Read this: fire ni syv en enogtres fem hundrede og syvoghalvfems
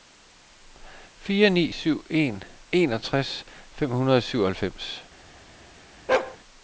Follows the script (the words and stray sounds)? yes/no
no